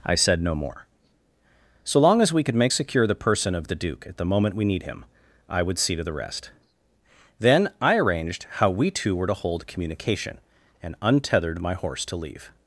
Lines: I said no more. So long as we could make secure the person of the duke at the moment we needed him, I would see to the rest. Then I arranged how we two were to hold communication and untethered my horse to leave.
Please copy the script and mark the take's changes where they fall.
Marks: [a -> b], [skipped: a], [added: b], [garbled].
I said no more. So long as we could make secure the person of the duke at the moment we [needed -> need] him, I would see to the rest. Then I arranged how we two were to hold communication and untethered my horse to leave.